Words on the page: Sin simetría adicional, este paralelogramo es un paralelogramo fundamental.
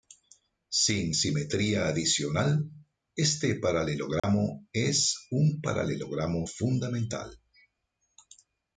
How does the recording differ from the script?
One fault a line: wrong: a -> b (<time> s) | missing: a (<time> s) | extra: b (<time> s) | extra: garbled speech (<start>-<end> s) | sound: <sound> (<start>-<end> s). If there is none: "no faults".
sound: dropout (4.2-4.2 s)